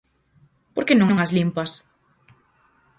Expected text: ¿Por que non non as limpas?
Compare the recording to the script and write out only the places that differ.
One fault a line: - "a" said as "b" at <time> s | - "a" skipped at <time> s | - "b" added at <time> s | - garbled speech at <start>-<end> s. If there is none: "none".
none